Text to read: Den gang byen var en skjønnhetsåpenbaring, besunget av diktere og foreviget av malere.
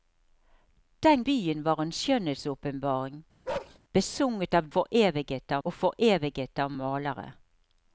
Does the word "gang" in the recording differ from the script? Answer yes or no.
yes